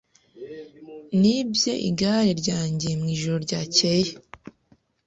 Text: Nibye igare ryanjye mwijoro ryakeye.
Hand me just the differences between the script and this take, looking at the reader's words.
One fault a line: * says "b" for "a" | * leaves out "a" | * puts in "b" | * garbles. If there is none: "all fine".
all fine